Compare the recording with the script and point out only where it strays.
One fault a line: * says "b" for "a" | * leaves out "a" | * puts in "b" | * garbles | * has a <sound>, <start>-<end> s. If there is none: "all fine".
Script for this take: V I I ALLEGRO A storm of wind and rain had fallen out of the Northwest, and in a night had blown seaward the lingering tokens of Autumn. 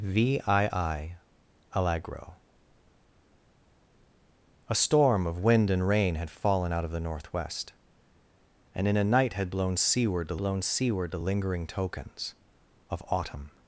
* puts in "blown seaward the"